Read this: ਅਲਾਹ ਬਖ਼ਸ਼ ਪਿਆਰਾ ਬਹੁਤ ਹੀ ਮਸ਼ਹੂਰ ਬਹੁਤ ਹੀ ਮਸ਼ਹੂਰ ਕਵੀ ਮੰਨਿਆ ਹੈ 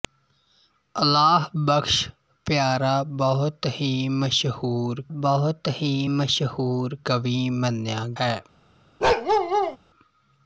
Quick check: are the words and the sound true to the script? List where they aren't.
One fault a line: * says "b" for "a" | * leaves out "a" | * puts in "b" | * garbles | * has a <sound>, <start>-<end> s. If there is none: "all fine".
* has a bark, 9.0-9.8 s